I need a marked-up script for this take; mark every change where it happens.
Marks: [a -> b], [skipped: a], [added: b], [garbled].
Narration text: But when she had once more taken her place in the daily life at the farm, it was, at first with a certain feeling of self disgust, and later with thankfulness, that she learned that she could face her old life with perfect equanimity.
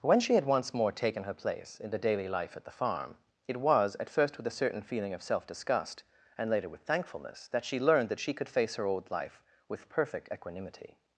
[skipped: But] when she had once more taken her place in the daily life at the farm, it was, at first with a certain feeling of self disgust, and later with thankfulness, that she learned that she could face her old life with perfect equanimity.